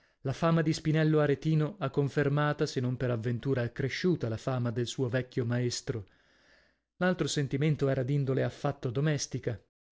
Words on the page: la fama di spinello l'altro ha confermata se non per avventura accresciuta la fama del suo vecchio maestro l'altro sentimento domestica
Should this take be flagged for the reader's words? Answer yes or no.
yes